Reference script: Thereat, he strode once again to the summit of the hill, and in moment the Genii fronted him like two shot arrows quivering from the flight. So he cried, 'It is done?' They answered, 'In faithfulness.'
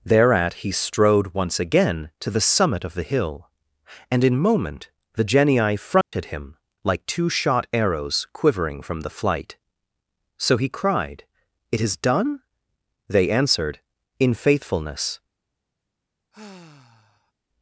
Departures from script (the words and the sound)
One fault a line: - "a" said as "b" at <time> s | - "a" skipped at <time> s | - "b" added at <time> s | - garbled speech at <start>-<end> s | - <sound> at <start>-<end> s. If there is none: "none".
- dropout at 6.0-6.1 s
- sigh at 16.3-17.3 s